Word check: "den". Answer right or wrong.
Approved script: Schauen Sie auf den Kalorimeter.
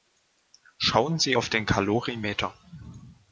right